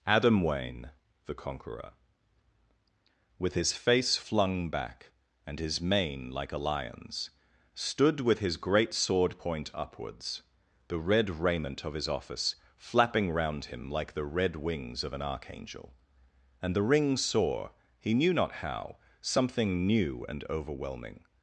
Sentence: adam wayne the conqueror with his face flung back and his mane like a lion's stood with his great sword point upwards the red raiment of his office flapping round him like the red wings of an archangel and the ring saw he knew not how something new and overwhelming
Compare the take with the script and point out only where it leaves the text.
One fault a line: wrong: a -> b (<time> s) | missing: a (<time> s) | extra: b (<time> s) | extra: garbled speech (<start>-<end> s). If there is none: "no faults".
no faults